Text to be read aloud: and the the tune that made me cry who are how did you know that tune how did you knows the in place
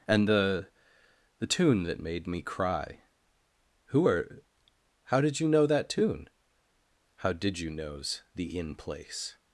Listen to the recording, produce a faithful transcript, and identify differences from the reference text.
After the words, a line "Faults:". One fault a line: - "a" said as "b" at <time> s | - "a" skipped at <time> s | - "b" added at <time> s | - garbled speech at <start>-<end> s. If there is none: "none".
and the the tune that made me cry who are how did you know that tune how did you knows the in place
Faults:
none